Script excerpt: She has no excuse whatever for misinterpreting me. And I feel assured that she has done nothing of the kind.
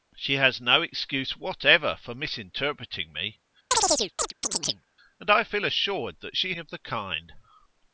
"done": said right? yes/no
no